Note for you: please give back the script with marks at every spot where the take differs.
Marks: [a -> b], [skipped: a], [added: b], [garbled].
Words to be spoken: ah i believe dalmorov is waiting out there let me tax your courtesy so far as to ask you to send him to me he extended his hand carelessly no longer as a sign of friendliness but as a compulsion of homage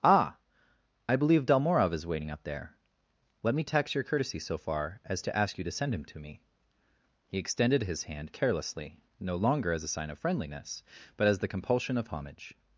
ah i believe dalmorov is waiting out there let me tax your courtesy so far as to ask you to send him to me he extended his hand carelessly no longer as a sign of friendliness but as [a -> the] compulsion of homage